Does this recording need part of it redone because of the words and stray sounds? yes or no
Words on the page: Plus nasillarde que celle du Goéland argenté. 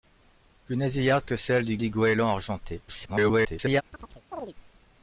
yes